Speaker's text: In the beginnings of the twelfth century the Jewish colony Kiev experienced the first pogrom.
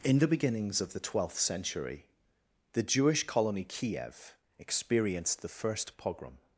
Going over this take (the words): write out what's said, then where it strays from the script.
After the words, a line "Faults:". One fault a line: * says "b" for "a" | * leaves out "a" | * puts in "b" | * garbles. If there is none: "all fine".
In the beginnings of the twelfth century the Jewish colony Kiev experienced the first pogrom.
Faults:
all fine